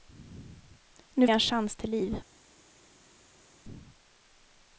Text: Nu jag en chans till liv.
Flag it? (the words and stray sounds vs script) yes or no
no